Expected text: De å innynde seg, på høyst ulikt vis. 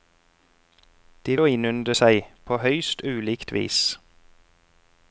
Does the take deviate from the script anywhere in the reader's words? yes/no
no